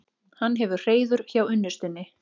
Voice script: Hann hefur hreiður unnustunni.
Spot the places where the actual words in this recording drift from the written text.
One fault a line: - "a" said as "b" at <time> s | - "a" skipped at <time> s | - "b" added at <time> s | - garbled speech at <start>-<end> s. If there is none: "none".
- "hjá" added at 1.3 s